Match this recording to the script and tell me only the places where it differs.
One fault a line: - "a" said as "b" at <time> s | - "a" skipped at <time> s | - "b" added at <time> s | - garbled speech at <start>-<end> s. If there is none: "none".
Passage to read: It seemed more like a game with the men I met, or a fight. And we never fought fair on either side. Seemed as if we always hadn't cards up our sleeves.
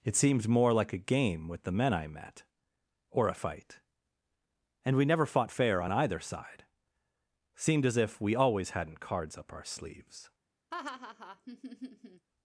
none